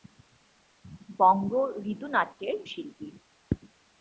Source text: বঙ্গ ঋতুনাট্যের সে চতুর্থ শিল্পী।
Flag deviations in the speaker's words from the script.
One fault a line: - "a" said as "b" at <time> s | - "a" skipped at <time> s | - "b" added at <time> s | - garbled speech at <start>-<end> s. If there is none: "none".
- "সে চতুর্থ" skipped at 2.6 s